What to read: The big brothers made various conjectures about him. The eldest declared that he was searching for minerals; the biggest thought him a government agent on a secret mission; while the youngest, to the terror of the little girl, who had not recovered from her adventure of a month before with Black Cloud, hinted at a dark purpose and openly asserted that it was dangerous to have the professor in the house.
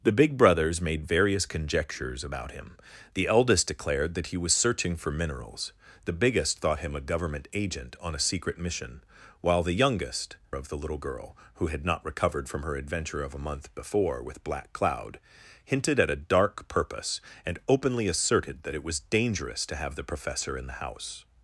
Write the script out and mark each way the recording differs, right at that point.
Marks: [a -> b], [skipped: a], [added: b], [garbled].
The big brothers made various conjectures about him. The eldest declared that he was searching for minerals; the biggest thought him a government agent on a secret mission; while the youngest, [skipped: to the terror] of the little girl, who had not recovered from her adventure of a month before with Black Cloud, hinted at a dark purpose and openly asserted that it was dangerous to have the professor in the house.